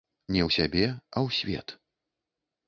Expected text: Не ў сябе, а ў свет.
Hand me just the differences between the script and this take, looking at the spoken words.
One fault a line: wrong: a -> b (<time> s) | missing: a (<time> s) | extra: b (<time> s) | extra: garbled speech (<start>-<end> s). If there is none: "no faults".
no faults